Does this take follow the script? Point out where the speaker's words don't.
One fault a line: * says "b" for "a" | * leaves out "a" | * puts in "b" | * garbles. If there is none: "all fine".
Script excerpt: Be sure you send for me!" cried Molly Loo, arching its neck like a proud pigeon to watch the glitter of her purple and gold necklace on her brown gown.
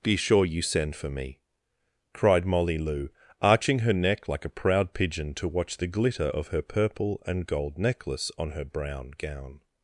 * says "her" for "its"